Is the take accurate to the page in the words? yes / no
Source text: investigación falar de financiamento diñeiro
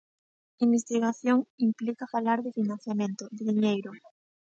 no